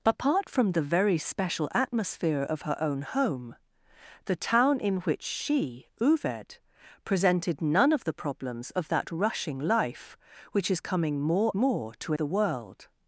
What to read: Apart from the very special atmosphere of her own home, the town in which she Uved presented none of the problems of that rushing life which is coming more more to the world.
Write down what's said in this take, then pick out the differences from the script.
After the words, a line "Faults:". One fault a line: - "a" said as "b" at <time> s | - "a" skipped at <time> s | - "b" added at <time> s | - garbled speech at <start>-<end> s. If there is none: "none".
Apart from the very special atmosphere of her own home, the town in which she Uved presented none of the problems of that rushing life which is coming more more to the world.
Faults:
none